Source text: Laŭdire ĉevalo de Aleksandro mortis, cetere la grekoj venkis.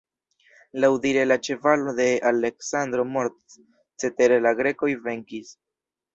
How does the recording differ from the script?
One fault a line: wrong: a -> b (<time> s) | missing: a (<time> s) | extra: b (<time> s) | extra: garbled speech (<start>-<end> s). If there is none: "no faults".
extra: la (1.3 s)